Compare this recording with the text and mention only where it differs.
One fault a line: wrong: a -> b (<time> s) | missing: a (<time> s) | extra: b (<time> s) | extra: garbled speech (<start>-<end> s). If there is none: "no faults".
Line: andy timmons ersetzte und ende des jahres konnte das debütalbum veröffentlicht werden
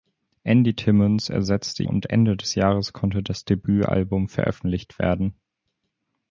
no faults